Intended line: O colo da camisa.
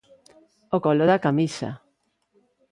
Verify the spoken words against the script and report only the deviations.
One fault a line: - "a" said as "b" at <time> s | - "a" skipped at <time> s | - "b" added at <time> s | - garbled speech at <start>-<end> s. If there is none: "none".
none